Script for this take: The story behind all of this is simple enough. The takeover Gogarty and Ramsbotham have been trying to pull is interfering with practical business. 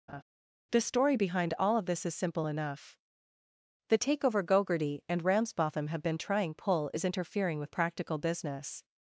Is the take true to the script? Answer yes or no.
no